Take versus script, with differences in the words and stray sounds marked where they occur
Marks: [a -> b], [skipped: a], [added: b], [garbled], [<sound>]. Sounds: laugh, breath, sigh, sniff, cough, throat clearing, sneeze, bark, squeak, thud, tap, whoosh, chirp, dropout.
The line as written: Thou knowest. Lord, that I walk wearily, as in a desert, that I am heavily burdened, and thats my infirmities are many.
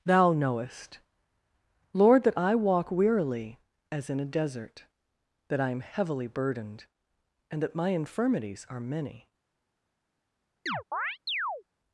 Thou knowest. Lord, that I walk wearily, as in a desert, that I am heavily burdened, and [thats -> that] my infirmities are many. [chirp]